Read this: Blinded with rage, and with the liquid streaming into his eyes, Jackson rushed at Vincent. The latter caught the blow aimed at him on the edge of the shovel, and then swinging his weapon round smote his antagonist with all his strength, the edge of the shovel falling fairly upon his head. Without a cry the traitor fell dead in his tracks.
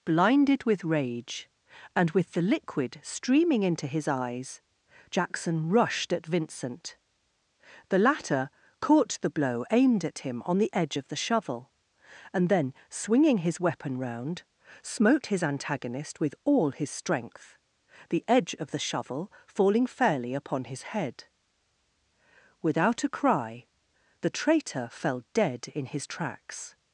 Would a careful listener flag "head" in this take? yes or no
no